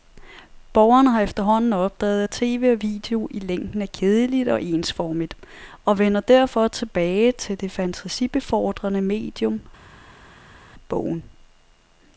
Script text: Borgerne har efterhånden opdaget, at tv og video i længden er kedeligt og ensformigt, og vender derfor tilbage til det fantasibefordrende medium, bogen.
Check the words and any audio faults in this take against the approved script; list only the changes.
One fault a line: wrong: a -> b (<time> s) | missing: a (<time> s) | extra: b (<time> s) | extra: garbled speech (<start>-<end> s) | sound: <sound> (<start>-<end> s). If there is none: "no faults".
no faults